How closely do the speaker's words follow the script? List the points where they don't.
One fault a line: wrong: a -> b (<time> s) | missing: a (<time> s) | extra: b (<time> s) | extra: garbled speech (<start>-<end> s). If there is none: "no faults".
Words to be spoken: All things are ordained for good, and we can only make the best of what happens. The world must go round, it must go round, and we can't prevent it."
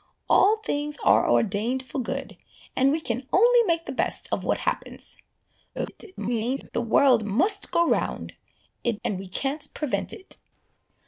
extra: garbled speech (5.7-6.7 s)
missing: must go round (9.0 s)